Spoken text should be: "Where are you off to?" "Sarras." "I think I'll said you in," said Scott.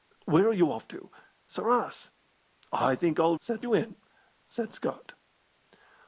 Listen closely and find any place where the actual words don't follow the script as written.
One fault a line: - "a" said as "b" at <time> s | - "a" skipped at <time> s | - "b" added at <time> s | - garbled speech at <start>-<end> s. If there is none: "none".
none